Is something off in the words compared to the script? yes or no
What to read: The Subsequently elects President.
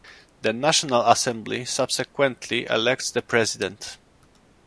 yes